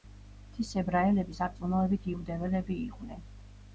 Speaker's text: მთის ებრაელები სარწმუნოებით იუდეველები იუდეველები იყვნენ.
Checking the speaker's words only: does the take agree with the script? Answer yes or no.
no